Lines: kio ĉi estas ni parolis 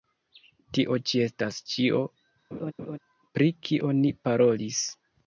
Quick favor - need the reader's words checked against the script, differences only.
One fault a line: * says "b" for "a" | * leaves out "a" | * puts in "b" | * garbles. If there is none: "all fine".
* says "tio" for "kio"
* puts in "ĉio pri kio"